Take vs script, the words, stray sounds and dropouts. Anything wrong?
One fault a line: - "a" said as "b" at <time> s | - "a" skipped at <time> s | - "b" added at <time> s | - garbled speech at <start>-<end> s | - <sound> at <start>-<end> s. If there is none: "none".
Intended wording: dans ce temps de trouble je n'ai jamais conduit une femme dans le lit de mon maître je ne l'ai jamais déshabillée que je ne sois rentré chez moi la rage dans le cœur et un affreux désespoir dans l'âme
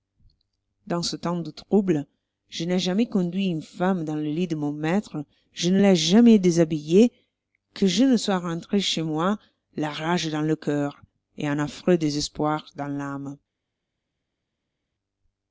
none